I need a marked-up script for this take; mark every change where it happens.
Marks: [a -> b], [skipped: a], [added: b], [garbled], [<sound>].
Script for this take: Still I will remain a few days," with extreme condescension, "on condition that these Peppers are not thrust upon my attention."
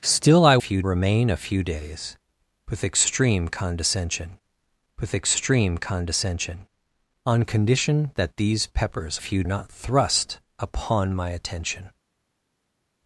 Still I [will -> few] remain a few days," with extreme condescension, [added: with extreme condescension] "on condition that these Peppers [are -> few] not thrust upon my attention."